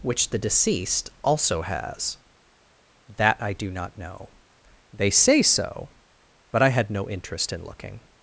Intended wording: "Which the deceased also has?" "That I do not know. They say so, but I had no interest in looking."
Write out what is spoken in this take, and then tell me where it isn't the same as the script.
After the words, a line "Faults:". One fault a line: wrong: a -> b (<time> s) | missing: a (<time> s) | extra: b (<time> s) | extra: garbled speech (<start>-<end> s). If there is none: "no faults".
"Which the deceased also has?" "That I do not know. They say so, but I had no interest in looking."
Faults:
no faults